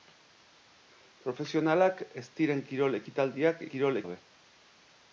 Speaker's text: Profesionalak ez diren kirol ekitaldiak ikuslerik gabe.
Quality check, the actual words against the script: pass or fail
fail